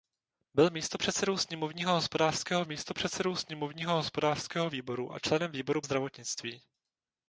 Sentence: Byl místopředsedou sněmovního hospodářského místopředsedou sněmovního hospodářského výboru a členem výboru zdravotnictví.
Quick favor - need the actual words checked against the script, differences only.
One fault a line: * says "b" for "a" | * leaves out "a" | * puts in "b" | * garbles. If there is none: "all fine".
all fine